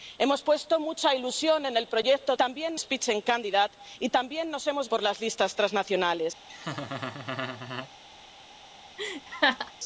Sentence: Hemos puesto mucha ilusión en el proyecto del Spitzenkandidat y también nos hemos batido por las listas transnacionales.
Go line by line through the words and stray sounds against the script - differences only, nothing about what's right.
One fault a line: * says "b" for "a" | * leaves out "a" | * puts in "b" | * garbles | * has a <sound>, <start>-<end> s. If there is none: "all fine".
* says "también" for "del"
* leaves out "batido"
* has a laugh, 6.5-7.9 s
* has a laugh, 9.0-9.7 s